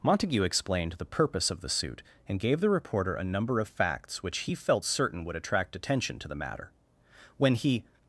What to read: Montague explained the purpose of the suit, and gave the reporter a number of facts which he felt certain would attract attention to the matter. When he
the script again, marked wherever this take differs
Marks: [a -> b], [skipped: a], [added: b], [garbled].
Montague explained the purpose of the suit, and gave the reporter a number of facts which he felt certain would attract attention to the matter. When he